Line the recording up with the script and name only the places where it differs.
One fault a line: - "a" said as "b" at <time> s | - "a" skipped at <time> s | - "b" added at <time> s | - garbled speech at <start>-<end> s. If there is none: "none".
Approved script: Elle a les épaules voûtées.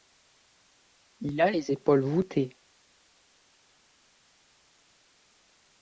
- "Elle" said as "Il" at 1.2 s